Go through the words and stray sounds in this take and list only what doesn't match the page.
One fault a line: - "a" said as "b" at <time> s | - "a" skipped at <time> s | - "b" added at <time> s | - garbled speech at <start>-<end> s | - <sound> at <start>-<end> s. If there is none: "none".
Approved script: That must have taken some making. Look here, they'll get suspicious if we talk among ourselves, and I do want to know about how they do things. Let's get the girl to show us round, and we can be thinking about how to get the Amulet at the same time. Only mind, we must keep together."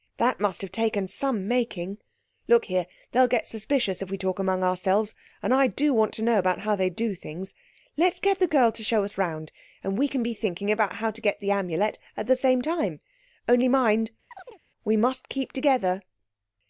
- chirp at 14.3-14.6 s